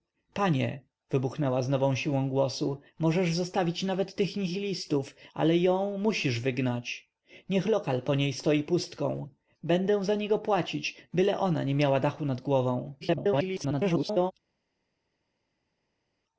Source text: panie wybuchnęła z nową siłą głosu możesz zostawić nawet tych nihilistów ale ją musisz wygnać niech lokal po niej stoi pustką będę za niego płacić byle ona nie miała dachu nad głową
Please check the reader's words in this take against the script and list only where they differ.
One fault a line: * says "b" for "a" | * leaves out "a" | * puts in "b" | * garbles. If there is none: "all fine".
* garbles